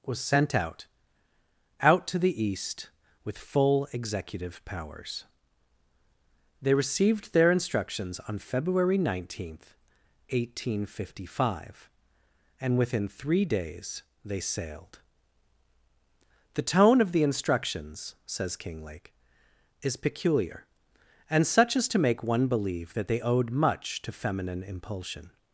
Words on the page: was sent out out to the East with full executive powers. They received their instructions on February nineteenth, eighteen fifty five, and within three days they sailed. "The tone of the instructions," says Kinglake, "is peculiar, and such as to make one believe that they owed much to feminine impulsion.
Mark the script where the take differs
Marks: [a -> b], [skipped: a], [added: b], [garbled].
was sent out out to the East with full executive powers. They received their instructions on February nineteenth, eighteen fifty five, and within three days they sailed. "The tone of the instructions," says Kinglake, "is peculiar, and such as to make one believe that they owed much to feminine impulsion.